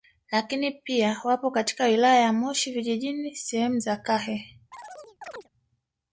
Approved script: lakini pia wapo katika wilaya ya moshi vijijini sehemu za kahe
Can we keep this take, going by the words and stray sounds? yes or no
no